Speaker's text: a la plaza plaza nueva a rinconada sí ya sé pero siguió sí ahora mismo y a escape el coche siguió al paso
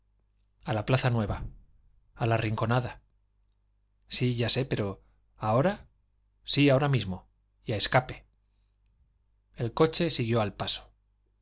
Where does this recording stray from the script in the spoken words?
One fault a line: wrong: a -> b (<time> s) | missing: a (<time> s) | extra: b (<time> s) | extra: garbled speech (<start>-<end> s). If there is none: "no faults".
missing: plaza (1.1 s)
extra: la (2.2 s)
wrong: siguió -> ahora (5.4 s)